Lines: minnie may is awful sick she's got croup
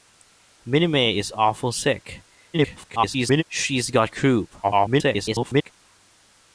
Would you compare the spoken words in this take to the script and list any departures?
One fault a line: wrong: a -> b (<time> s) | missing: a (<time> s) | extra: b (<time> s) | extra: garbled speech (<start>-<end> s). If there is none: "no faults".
extra: garbled speech (2.5-3.4 s)
extra: garbled speech (4.6-5.7 s)